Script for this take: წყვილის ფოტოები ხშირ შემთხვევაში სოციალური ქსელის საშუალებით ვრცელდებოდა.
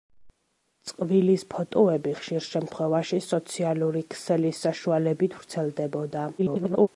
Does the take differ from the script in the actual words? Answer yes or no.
yes